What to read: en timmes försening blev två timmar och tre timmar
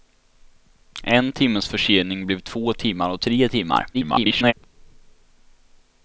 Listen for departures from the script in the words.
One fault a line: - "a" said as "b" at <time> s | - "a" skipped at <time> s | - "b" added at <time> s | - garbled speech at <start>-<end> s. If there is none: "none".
- garbled speech at 3.9-4.5 s